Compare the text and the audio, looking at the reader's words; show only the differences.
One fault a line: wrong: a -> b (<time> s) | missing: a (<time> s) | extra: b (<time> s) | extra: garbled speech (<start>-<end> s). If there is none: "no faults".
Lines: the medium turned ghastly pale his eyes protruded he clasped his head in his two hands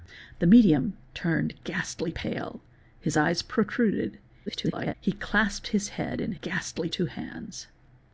extra: garbled speech (4.5-4.9 s)
wrong: his -> ghastly (6.4 s)